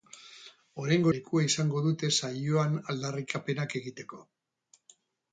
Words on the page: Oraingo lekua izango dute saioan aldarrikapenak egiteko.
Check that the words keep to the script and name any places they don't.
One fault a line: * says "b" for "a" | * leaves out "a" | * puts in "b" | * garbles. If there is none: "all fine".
all fine